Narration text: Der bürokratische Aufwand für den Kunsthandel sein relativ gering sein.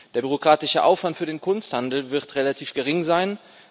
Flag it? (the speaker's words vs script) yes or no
yes